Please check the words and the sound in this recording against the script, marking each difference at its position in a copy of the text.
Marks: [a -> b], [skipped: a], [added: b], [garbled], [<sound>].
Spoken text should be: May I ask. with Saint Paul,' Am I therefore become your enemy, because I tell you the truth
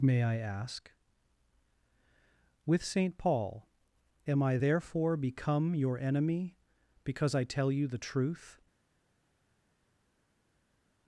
May I ask. with Saint Paul,' Am I therefore become your enemy, because I tell you the truth